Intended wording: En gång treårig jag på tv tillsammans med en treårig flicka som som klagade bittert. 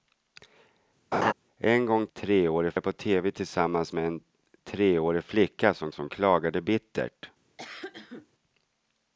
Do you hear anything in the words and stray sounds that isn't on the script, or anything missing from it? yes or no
yes